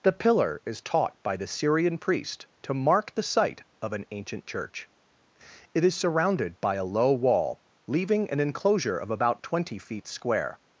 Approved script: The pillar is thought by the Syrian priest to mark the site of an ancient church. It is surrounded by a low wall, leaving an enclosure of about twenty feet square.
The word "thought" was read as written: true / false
false